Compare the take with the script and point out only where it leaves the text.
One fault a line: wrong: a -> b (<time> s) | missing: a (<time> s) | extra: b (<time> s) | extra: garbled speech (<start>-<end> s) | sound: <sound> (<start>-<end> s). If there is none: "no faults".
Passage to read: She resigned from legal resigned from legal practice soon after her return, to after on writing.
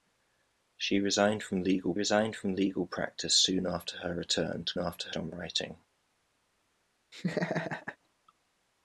sound: laugh (7.1-8.0 s)